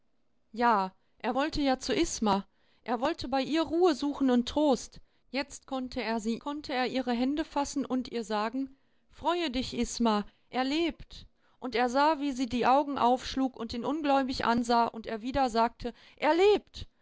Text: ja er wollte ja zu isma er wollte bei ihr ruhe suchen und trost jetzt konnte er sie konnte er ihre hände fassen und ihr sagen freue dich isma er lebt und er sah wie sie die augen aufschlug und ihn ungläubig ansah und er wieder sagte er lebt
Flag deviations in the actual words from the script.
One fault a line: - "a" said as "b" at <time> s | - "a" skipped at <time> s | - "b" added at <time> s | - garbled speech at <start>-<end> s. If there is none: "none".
none